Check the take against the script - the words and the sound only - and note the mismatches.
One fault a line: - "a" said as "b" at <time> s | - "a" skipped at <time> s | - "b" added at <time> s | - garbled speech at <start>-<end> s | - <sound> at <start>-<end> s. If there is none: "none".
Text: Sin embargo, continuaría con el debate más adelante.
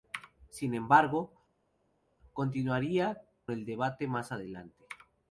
- "con" skipped at 3.2 s